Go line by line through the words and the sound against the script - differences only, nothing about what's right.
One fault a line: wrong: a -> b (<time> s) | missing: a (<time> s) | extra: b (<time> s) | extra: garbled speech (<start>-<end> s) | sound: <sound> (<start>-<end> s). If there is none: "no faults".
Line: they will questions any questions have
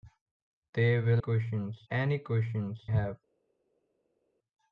no faults